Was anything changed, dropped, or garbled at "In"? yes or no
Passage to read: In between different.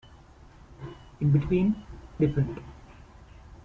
no